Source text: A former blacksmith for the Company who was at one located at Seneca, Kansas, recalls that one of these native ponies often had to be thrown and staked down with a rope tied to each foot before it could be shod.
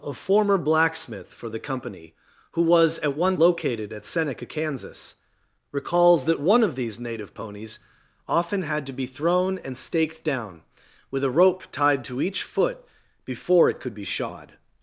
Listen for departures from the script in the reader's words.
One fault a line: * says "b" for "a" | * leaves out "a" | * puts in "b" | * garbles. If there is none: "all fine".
all fine